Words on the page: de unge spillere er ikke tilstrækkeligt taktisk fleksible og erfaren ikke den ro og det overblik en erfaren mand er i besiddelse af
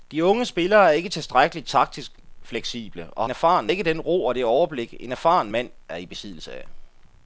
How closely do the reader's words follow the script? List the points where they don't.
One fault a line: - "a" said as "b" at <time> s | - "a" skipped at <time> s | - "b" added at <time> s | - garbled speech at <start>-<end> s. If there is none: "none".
none